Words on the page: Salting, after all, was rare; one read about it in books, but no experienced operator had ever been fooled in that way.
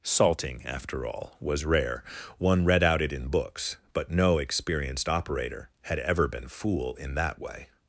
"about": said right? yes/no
no